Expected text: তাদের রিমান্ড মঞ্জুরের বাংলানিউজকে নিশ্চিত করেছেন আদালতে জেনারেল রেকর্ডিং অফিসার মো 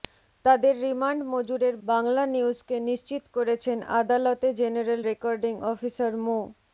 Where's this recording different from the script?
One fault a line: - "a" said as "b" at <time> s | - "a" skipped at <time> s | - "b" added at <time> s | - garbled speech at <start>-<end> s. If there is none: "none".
none